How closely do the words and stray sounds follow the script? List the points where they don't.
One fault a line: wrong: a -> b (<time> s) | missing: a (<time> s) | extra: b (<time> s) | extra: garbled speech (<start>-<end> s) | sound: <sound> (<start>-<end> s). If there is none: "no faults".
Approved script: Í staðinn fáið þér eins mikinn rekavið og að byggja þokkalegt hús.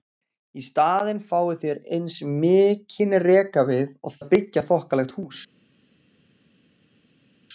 no faults